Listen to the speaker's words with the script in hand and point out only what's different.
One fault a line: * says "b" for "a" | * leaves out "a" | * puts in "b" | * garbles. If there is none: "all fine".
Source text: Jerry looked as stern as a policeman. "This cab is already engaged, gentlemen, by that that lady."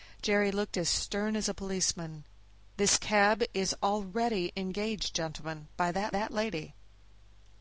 all fine